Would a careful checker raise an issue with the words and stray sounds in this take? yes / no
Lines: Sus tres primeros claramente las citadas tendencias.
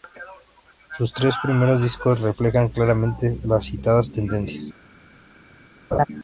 yes